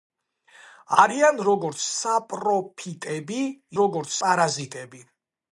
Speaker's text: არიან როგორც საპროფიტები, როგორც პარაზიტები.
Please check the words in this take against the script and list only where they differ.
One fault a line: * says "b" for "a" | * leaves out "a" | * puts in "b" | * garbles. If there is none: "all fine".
all fine